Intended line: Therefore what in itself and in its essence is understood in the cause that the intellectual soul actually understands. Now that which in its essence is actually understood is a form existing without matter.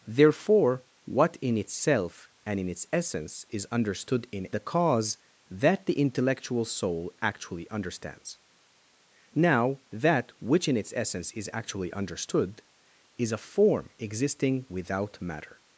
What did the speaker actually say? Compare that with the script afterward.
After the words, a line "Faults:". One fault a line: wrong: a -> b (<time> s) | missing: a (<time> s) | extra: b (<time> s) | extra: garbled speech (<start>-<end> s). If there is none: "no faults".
Therefore what in itself and in its essence is understood in the cause that the intellectual soul actually understands. Now that which in its essence is actually understood is a form existing without matter.
Faults:
no faults